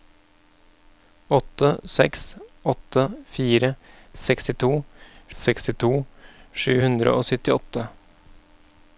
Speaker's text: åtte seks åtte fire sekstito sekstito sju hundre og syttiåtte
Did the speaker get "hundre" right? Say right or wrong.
right